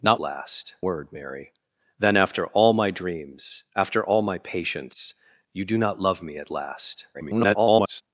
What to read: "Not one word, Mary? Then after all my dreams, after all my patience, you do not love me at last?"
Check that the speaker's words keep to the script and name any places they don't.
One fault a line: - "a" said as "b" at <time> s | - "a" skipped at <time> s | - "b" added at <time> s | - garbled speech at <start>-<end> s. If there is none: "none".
- "one" said as "last" at 0.2 s
- garbled speech at 7.1-8.0 s